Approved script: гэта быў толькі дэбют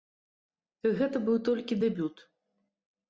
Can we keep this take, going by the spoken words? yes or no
yes